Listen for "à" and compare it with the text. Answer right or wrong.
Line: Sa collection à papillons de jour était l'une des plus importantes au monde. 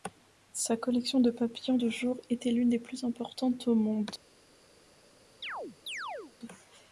wrong